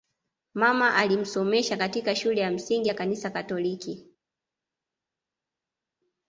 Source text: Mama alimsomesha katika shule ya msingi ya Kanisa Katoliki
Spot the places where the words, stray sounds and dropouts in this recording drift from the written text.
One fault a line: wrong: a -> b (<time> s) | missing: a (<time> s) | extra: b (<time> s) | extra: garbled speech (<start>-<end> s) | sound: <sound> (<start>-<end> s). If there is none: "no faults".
no faults